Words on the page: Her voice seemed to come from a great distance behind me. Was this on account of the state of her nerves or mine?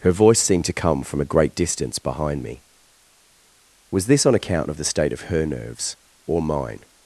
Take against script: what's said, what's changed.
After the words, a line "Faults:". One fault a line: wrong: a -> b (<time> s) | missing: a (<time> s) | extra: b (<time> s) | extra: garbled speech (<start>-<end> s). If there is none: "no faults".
Her voice seemed to come from a great distance behind me. Was this on account of the state of her nerves or mine?
Faults:
no faults